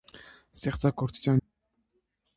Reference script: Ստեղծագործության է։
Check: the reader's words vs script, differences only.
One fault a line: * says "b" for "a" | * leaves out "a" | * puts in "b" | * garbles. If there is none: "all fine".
all fine